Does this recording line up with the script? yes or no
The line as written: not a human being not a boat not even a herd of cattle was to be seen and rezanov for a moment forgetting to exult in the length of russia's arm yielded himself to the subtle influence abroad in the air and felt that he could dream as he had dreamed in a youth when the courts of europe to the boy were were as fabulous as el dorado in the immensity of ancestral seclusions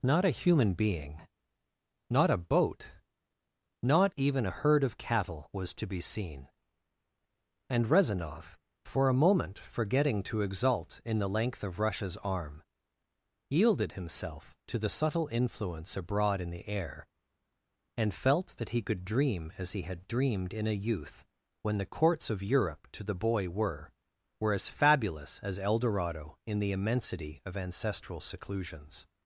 yes